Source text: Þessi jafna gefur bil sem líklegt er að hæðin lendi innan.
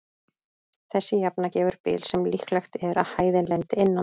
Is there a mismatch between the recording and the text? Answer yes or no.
no